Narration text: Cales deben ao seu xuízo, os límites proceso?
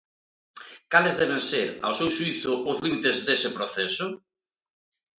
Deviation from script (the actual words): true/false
true